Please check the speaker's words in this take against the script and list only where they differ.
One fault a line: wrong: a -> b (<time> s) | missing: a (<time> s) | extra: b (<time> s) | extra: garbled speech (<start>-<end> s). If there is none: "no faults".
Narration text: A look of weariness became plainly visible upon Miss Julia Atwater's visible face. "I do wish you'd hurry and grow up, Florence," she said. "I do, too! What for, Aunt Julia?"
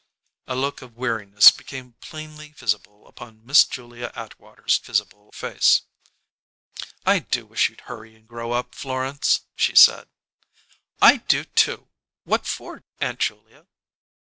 no faults